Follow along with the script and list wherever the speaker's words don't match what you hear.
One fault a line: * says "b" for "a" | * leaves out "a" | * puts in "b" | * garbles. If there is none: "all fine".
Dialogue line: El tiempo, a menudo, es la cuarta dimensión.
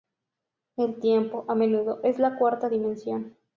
all fine